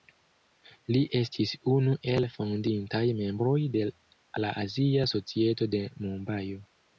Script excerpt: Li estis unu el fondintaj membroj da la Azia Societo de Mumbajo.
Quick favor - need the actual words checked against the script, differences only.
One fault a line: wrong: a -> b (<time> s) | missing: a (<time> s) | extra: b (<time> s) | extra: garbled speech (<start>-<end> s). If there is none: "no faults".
wrong: da -> de (3.7 s)